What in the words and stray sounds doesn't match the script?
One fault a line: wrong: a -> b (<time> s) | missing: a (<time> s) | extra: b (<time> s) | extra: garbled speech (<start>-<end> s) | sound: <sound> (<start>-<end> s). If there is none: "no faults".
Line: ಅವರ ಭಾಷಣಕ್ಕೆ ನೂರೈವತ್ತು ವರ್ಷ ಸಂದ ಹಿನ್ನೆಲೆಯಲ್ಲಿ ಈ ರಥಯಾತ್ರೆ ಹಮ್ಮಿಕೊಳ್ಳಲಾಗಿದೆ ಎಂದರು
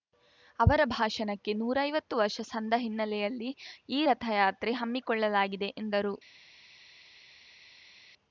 no faults